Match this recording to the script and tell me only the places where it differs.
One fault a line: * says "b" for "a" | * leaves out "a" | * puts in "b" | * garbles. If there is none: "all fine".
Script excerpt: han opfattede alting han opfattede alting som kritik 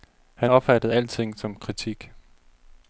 * leaves out "han opfattede alting"